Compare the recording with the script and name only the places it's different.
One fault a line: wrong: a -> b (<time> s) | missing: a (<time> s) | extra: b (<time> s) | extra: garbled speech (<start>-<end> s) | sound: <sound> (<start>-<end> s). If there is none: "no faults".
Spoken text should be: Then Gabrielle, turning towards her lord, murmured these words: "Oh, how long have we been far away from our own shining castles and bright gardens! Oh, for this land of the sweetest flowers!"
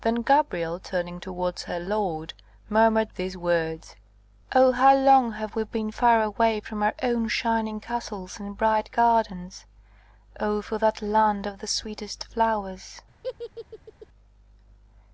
wrong: this -> that (10.8 s)
sound: laugh (13.2-14.1 s)